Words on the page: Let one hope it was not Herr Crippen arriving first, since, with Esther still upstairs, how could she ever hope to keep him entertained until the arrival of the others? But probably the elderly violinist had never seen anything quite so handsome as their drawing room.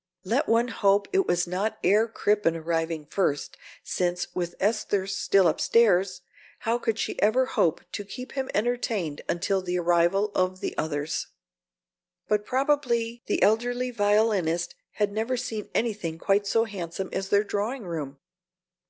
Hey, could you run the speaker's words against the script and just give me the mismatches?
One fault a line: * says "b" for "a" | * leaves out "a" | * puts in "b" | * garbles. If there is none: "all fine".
all fine